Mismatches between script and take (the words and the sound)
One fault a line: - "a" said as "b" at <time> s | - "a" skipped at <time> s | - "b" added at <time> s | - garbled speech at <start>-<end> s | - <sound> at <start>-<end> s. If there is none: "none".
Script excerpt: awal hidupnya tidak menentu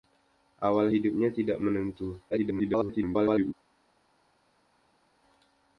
- garbled speech at 2.3-3.5 s